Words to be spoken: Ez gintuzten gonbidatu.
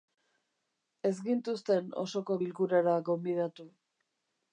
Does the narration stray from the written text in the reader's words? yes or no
yes